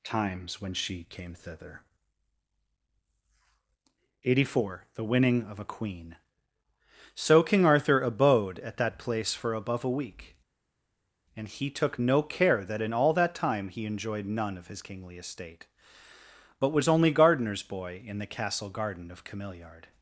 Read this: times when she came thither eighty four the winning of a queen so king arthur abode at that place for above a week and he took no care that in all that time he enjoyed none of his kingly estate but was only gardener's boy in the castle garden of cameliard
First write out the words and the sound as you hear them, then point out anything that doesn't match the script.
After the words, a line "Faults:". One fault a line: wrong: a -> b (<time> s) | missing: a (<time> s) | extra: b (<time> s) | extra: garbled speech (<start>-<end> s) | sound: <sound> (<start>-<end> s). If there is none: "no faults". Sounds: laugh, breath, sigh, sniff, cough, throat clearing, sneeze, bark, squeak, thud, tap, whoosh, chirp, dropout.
times when she came thither eighty four the winning of a queen so king arthur abode at that place for above a week and he took no care that in all that time he enjoyed none of his kingly estate but was only gardener's boy in the castle garden of cameliard
Faults:
no faults